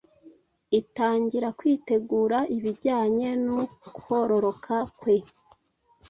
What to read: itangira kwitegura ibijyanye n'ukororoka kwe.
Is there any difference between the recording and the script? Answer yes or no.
no